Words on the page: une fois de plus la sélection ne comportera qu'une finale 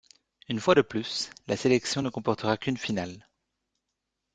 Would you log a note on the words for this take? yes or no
no